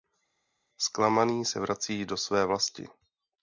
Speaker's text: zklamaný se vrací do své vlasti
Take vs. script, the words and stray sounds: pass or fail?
pass